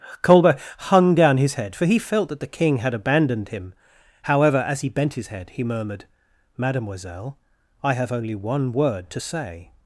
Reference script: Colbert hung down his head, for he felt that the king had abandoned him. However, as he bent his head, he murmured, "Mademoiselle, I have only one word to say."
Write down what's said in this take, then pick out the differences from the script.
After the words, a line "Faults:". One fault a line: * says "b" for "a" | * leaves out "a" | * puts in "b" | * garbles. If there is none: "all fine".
Colbert hung down his head, for he felt that the king had abandoned him. However, as he bent his head, he murmured, "Mademoiselle, I have only one word to say."
Faults:
all fine